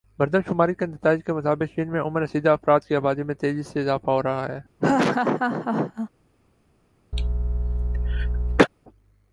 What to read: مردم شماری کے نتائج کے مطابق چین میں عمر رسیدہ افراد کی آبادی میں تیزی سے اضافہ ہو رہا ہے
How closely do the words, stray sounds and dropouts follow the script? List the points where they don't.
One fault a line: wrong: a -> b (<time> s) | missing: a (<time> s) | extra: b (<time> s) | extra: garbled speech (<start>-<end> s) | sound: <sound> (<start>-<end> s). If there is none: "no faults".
sound: laugh (4.8-6.1 s)
sound: cough (7.1-8.7 s)